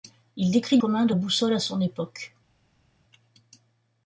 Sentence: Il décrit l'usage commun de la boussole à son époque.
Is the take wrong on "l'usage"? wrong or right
wrong